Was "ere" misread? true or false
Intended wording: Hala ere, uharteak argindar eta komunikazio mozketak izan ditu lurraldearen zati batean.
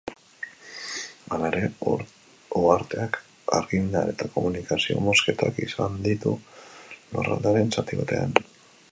false